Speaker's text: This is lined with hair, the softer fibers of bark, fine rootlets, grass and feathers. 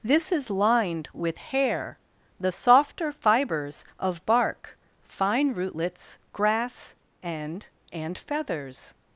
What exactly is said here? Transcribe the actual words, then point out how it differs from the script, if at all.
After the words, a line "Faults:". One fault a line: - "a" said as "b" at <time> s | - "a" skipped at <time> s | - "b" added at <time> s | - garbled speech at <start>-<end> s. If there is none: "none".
This is lined with hair, the softer fibers of bark, fine rootlets, grass and and feathers.
Faults:
- "and" added at 7.9 s